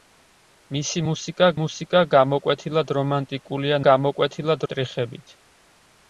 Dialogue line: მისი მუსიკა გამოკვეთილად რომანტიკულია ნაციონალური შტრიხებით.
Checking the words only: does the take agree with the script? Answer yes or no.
no